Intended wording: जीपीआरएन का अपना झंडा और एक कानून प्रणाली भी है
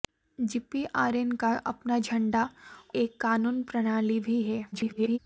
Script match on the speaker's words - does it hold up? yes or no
no